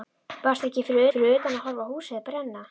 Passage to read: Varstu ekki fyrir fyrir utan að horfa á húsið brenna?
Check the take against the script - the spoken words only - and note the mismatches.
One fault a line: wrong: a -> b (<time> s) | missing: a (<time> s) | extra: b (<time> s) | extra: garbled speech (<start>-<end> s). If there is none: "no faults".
no faults